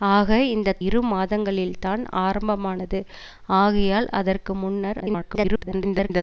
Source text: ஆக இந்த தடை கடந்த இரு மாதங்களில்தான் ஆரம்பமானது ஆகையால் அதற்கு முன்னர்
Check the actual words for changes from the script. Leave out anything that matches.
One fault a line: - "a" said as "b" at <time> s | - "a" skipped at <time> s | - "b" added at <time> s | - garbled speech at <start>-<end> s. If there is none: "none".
- "தடை கடந்த" skipped at 0.8 s
- garbled speech at 5.0-6.2 s